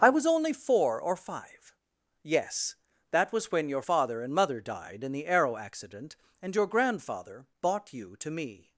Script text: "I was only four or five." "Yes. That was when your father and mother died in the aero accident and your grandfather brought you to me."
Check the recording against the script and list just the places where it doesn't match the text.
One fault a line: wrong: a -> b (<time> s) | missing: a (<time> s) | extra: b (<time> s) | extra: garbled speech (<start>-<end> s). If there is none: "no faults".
wrong: brought -> bought (7.6 s)